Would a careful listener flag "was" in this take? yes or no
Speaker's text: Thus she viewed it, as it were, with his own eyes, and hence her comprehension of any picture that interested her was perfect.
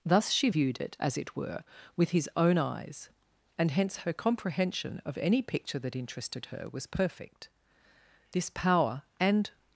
no